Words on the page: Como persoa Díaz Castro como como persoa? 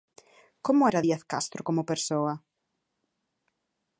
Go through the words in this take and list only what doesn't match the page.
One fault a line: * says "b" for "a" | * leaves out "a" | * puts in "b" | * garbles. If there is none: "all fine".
* says "era" for "persoa"
* leaves out "como"